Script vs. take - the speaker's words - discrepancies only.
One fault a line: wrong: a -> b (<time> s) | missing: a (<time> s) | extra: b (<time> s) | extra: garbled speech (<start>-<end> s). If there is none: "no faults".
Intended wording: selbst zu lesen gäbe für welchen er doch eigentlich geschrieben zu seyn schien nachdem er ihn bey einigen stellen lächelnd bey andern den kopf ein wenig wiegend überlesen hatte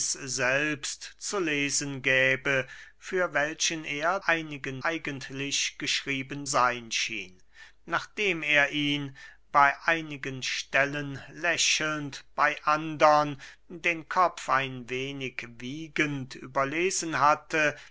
wrong: doch -> einigen (4.2 s)
missing: zu (6.5 s)